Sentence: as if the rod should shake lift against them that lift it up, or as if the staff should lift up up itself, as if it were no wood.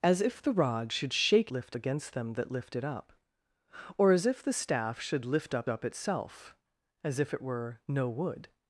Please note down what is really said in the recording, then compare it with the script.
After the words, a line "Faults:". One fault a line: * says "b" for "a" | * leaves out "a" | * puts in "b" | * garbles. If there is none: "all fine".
as if the rod should shake lift against them that lift it up, or as if the staff should lift up up itself, as if it were no wood.
Faults:
all fine